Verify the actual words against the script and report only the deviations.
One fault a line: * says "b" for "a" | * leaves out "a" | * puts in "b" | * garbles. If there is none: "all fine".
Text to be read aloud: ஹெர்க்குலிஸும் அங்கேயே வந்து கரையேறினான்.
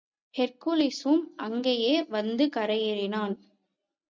all fine